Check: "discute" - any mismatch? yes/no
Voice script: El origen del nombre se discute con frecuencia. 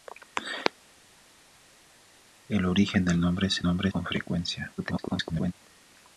yes